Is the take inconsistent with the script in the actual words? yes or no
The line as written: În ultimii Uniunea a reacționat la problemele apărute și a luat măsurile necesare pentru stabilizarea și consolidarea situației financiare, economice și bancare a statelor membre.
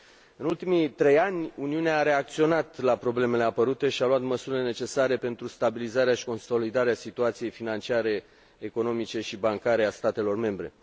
yes